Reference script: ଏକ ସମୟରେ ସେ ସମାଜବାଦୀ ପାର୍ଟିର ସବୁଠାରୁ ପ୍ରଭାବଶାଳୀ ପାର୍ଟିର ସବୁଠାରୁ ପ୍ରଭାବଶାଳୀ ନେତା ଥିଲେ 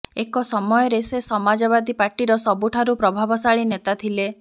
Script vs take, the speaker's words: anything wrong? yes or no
yes